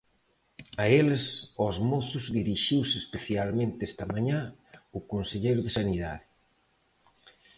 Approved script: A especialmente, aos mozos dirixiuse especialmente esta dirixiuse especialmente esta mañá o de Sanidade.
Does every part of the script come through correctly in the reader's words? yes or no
no